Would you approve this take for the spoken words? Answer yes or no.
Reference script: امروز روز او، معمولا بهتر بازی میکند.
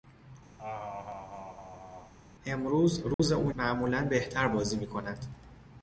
yes